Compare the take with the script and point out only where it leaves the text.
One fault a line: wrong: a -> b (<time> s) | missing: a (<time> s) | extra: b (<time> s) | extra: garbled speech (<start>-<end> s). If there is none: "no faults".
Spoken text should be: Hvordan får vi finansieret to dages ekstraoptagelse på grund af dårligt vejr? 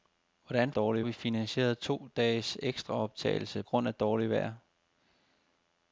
wrong: får -> dårligt (0.7 s)
missing: på (3.6 s)